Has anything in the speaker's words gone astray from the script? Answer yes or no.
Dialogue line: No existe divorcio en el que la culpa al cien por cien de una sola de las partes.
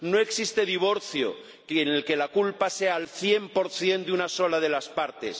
yes